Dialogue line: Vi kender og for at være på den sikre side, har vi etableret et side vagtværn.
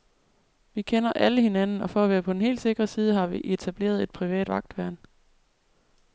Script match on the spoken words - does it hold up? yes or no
no